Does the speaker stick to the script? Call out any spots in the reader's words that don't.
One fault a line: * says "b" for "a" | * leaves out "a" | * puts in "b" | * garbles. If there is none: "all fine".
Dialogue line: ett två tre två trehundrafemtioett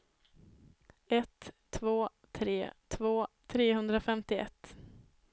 all fine